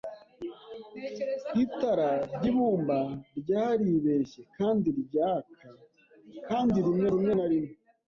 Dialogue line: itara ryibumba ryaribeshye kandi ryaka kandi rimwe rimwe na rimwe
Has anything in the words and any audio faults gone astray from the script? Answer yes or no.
no